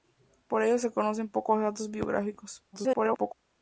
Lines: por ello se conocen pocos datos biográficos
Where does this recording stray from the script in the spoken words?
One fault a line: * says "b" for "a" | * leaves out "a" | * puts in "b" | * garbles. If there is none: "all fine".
* garbles